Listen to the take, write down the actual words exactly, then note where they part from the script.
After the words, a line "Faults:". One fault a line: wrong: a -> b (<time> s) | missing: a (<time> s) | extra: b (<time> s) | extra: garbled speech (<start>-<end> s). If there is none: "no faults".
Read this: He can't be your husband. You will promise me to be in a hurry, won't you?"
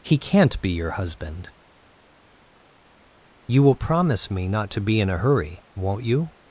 He can't be your husband. You will promise me not to be in a hurry, won't you?"
Faults:
extra: not (4.5 s)